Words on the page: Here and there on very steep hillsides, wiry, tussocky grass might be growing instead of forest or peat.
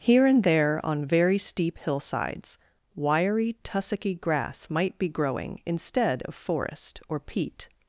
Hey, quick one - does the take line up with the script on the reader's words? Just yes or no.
yes